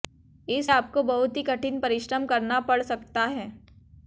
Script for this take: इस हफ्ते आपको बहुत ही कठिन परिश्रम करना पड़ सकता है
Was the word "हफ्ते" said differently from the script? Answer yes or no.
yes